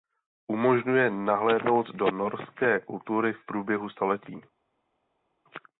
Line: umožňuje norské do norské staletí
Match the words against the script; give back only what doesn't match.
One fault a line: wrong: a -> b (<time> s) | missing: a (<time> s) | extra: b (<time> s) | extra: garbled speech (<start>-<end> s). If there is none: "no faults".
wrong: norské -> nahlédnout (1.1 s)
extra: kultury v průběhu (2.8 s)